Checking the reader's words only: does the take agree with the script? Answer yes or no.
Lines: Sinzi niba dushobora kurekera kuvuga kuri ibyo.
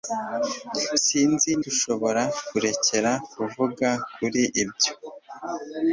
no